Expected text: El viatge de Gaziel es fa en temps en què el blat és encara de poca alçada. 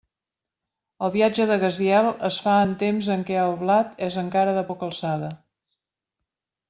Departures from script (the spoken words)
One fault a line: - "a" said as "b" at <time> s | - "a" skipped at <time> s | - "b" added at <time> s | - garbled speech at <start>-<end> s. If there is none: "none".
none